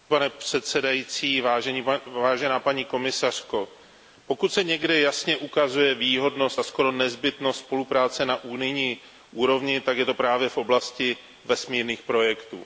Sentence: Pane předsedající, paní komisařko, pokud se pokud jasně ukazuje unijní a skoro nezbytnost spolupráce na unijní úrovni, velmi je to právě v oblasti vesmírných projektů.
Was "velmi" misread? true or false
true